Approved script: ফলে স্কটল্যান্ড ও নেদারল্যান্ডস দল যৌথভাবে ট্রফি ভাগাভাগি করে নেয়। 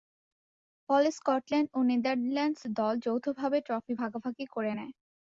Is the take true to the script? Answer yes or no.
yes